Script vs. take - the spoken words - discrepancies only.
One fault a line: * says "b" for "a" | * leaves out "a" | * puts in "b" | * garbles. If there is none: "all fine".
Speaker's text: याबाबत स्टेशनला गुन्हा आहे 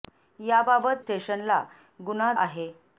all fine